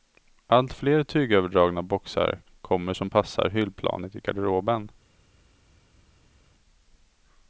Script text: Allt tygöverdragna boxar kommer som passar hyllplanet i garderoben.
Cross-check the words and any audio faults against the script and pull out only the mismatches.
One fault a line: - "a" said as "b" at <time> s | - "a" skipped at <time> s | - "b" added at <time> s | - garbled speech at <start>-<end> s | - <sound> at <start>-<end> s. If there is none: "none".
- "fler" added at 0.7 s